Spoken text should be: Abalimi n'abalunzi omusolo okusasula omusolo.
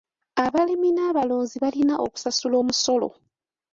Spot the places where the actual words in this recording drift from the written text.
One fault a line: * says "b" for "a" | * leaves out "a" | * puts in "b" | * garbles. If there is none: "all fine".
* says "balina" for "omusolo"